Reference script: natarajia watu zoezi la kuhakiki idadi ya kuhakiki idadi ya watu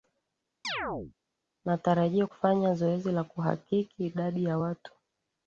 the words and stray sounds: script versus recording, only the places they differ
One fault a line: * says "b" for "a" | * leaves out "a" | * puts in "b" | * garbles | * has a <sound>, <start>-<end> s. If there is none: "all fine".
* has a chirp, 0.6-1.1 s
* says "kufanya" for "watu"
* leaves out "kuhakiki idadi ya"